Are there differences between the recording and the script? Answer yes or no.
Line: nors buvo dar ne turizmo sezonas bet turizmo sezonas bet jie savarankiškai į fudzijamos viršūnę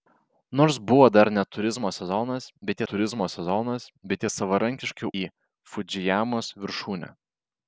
no